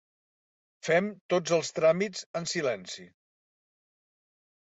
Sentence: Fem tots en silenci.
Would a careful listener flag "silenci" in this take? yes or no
no